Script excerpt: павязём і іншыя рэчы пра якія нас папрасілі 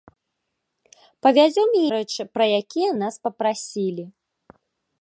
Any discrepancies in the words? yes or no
yes